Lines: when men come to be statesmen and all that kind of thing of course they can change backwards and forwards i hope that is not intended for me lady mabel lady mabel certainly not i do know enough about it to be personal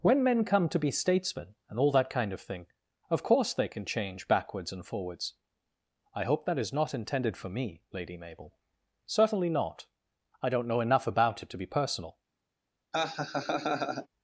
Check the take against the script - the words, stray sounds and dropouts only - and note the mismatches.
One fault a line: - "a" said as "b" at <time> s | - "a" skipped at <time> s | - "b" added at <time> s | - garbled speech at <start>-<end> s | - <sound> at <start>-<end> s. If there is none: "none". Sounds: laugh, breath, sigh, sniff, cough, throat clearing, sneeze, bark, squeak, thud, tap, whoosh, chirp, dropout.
- "lady mabel" skipped at 8.6 s
- "do" said as "don't" at 10.5 s
- laugh at 12.9-14.1 s